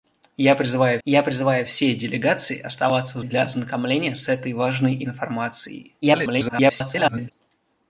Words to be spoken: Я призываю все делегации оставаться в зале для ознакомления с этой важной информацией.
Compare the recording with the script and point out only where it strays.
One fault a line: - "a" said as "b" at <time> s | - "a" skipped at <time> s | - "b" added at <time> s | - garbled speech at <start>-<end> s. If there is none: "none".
- "я призываю" added at 1.0 s
- "зале" skipped at 3.2 s
- garbled speech at 6.0-7.3 s